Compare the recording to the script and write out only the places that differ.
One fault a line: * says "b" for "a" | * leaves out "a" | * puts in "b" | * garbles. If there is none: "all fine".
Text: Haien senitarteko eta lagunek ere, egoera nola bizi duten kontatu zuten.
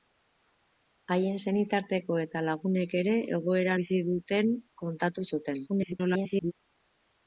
* leaves out "nola"
* garbles